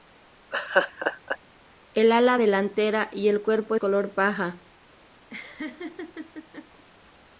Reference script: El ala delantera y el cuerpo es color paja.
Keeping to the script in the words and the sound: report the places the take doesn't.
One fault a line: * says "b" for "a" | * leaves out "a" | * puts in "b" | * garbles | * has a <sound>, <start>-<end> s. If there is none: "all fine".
* has a laugh, 0.5-1.4 s
* leaves out "es"
* has a laugh, 5.3-6.8 s